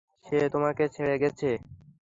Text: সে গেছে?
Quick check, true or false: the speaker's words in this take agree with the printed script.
false